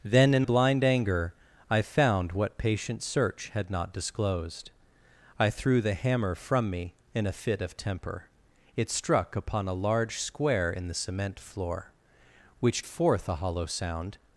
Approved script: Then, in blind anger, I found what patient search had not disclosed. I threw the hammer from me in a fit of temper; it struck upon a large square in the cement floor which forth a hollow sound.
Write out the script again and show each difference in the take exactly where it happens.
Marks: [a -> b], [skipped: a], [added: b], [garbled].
Then, in blind anger, I found what patient search had not disclosed. I threw the hammer from me in a fit of temper; it struck upon a large square in the cement floor which forth a hollow sound.